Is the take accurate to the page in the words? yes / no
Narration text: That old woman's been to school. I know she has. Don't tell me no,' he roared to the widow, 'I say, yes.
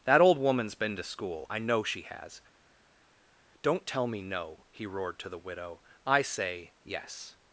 yes